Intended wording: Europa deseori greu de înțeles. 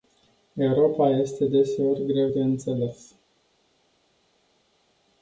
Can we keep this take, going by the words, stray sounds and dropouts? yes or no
no